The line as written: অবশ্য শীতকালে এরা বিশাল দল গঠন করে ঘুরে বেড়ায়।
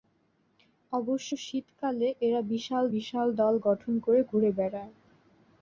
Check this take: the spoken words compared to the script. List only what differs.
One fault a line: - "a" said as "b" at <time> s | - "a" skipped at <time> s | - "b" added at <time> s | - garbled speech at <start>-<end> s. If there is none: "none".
- "বিশাল" added at 2.9 s